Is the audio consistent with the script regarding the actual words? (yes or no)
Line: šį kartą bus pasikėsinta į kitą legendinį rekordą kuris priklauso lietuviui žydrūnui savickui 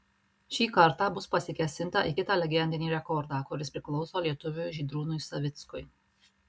yes